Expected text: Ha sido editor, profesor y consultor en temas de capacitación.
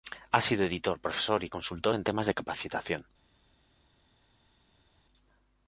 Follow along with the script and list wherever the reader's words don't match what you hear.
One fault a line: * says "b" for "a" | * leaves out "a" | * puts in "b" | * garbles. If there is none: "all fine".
all fine